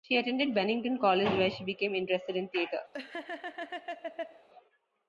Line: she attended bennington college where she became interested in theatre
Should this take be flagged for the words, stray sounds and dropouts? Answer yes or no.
yes